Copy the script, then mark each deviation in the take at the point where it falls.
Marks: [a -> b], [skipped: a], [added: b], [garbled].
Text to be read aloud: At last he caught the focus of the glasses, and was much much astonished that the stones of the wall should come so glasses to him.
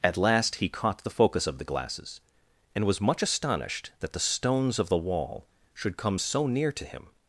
At last he caught the focus of the glasses, and was much [skipped: much] astonished that the stones of the wall should come so [glasses -> near] to him.